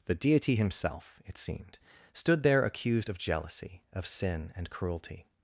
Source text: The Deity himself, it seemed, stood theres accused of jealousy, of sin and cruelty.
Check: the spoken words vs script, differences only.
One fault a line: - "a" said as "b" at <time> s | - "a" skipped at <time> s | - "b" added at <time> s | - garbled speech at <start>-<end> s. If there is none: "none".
- "theres" said as "there" at 2.4 s